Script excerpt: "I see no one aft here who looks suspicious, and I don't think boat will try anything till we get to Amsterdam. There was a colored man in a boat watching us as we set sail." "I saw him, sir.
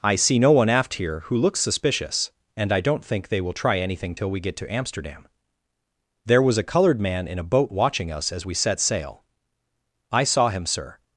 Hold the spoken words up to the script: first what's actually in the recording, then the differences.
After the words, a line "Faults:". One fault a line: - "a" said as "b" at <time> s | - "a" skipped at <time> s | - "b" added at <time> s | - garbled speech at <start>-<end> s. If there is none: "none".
"I see no one aft here who looks suspicious, and I don't think they will try anything till we get to Amsterdam. There was a colored man in a boat watching us as we set sail." "I saw him, sir.
Faults:
- "boat" said as "they" at 3.3 s